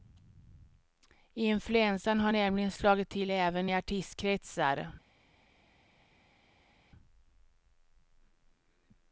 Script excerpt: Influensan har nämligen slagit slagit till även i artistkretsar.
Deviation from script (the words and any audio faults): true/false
true